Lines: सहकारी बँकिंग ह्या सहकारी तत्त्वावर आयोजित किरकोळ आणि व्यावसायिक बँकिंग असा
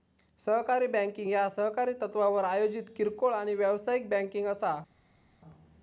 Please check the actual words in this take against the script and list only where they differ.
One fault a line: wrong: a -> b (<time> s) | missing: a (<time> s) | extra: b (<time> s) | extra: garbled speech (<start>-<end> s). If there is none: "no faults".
no faults